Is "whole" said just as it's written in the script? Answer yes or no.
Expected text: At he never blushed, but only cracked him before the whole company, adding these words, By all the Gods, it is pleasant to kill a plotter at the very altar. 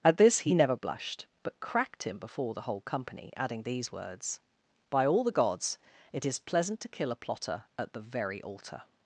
yes